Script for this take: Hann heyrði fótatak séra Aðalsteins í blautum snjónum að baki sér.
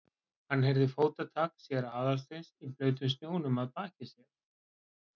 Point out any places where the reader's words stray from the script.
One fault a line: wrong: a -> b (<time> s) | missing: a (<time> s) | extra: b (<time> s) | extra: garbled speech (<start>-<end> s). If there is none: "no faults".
no faults